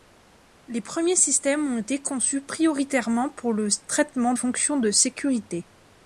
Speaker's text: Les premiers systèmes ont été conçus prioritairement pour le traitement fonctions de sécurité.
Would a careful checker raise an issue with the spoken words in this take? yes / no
no